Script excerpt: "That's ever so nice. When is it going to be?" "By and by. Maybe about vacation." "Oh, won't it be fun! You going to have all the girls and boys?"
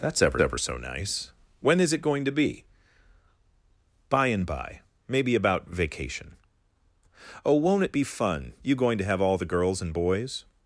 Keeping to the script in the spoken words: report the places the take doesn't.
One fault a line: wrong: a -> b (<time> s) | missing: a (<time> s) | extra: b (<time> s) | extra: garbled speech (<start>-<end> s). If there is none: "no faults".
extra: ever (0.4 s)